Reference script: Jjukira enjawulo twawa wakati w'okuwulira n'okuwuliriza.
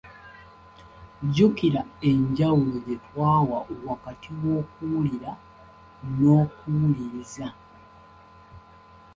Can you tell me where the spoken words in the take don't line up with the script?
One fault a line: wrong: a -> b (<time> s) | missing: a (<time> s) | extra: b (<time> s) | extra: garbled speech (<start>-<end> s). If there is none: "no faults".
extra: gye (2.8 s)